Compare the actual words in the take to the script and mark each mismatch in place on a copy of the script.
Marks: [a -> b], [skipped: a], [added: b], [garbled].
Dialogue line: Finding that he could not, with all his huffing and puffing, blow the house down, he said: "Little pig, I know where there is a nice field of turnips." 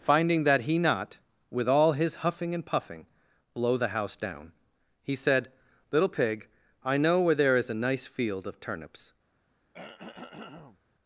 Finding that he [skipped: could] not, with all his huffing and puffing, blow the house down, he said: "Little pig, I know where there is a nice field of turnips."